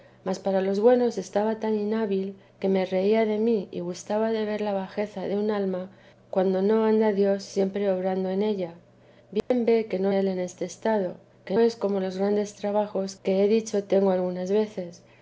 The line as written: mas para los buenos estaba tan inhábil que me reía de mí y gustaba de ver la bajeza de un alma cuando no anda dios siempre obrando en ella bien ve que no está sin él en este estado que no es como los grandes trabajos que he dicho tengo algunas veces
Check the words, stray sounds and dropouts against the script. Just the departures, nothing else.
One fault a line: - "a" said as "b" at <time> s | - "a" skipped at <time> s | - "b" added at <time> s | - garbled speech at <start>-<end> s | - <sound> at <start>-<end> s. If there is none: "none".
- dropout at 9.4-9.5 s
- "está sin" skipped at 10.1 s
- "no" skipped at 11.6 s